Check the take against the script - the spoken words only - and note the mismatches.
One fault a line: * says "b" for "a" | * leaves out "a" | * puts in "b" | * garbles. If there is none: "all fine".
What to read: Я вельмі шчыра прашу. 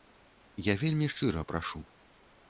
all fine